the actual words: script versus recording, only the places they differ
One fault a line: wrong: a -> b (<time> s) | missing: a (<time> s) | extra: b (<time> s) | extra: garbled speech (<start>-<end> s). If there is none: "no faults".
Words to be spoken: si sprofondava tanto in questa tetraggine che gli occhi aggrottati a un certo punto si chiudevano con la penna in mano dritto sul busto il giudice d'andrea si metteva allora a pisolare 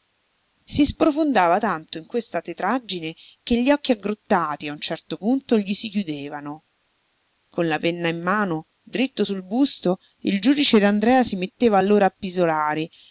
extra: gli (5.6 s)